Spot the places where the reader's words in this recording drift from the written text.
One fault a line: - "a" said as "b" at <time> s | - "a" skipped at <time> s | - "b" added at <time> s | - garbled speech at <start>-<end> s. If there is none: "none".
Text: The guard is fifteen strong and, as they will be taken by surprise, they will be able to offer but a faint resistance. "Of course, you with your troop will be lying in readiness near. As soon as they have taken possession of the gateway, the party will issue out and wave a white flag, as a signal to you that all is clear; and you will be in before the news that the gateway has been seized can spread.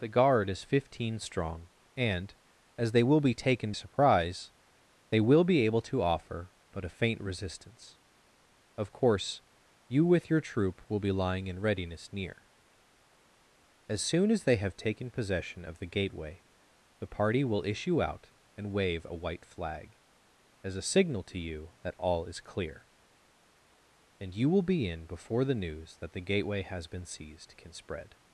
- "by" skipped at 3.7 s